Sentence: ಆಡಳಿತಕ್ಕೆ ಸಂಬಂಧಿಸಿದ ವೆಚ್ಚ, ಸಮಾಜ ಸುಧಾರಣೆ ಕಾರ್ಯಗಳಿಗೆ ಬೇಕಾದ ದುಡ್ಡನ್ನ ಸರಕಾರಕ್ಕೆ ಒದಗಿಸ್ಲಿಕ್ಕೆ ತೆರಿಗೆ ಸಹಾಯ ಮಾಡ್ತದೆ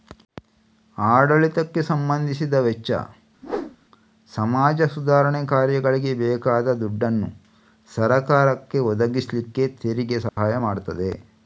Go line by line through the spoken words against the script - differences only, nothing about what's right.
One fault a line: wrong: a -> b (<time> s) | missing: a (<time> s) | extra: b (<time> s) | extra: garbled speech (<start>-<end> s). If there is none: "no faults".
no faults